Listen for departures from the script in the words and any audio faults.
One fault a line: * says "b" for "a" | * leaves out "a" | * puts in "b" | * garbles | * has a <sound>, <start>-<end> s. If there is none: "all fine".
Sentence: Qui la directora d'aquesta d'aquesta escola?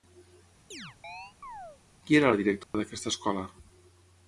* has a chirp, 0.7-1.8 s
* puts in "era"
* has a dropout, 2.6-2.7 s
* leaves out "d'aquesta"